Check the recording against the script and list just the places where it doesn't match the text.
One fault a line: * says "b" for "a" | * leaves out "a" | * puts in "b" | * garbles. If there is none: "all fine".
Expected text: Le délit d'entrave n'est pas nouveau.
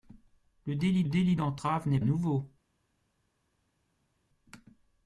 * puts in "délit"
* leaves out "pas"